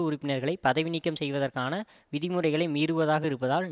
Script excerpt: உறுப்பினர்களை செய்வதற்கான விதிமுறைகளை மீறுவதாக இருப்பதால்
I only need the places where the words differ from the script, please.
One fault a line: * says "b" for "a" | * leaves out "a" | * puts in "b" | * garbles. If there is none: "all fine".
* puts in "பதவி நீக்கம்"